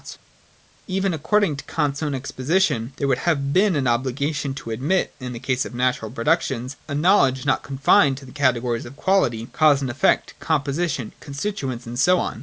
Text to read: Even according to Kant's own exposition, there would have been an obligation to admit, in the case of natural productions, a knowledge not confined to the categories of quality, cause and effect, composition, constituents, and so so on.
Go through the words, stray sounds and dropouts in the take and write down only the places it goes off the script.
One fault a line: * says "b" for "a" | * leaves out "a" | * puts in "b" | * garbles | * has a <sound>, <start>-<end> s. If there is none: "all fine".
* leaves out "so"